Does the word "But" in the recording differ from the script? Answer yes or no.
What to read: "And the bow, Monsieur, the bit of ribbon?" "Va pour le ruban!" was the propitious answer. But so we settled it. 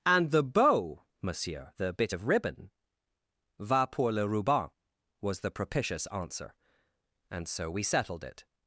yes